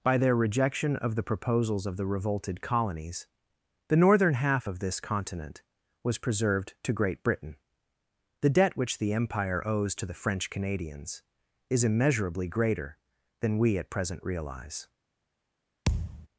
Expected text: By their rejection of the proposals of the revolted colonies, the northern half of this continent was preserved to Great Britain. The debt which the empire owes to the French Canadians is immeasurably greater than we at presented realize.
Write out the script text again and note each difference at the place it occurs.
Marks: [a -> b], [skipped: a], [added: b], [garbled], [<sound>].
By their rejection of the proposals of the revolted colonies, the northern half of this continent was preserved to Great Britain. The debt which the empire owes to the French Canadians is immeasurably greater than we at [presented -> present] realize. [thud]